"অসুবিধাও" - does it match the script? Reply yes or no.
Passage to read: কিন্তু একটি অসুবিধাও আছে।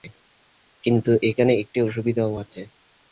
yes